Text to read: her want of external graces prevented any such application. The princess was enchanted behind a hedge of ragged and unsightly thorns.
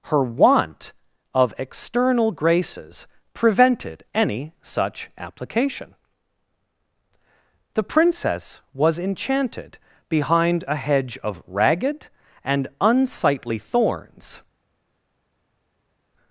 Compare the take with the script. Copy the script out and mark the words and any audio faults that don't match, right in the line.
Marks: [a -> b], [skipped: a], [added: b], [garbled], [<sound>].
her want of external graces prevented any such application. The princess was enchanted behind a hedge of ragged and unsightly thorns.